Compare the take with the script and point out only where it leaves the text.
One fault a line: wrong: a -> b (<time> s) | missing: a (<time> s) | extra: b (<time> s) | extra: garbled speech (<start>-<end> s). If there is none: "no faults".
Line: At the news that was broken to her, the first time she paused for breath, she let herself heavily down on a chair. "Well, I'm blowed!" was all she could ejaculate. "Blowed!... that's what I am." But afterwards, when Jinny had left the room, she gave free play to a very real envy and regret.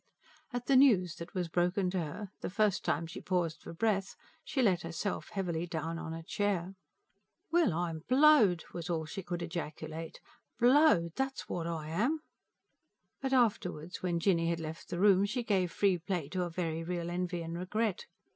no faults